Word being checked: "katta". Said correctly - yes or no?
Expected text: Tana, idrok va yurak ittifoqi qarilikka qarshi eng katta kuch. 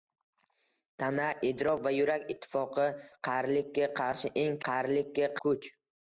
no